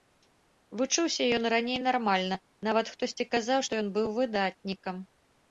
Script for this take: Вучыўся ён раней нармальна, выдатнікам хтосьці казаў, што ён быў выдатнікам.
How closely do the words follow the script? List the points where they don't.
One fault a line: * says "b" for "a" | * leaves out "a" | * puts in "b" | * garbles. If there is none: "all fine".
* says "нават" for "выдатнікам"